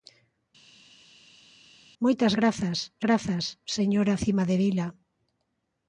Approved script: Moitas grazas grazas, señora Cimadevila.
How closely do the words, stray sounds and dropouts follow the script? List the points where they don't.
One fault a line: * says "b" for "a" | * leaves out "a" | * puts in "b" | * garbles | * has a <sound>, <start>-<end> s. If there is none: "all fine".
all fine